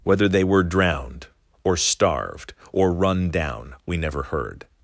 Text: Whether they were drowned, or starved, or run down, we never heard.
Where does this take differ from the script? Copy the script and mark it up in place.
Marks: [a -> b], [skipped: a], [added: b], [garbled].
Whether they were drowned, or starved, or run down, we never heard.